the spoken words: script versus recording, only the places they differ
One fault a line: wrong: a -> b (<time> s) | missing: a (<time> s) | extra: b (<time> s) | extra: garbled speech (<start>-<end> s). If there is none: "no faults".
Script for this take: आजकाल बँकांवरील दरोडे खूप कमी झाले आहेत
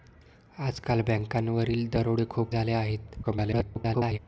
missing: कमी (2.5 s)
extra: garbled speech (3.2-4.2 s)